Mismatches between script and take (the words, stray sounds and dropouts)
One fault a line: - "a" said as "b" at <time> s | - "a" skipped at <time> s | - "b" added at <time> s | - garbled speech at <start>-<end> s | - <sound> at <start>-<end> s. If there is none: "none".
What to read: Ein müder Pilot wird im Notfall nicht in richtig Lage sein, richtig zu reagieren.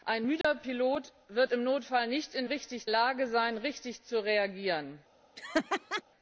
- dropout at 0.4-0.4 s
- laugh at 5.4-6.0 s